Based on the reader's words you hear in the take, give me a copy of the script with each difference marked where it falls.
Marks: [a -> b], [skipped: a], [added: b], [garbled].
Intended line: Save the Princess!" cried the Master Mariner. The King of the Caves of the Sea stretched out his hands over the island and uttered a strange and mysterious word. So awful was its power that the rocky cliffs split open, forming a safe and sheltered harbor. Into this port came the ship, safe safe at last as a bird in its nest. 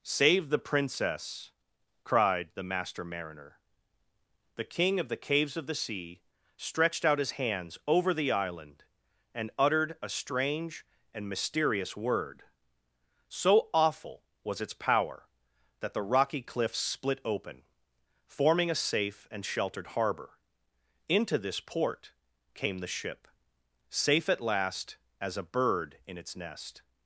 Save the Princess!" cried the Master Mariner. The King of the Caves of the Sea stretched out his hands over the island and uttered a strange and mysterious word. So awful was its power that the rocky cliffs split open, forming a safe and sheltered harbor. Into this port came the ship, safe [skipped: safe] at last as a bird in its nest.